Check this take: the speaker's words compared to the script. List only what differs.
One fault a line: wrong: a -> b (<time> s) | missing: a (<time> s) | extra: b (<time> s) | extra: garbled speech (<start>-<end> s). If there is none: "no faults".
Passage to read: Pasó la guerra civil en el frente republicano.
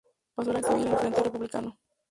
missing: guerra (0.6 s)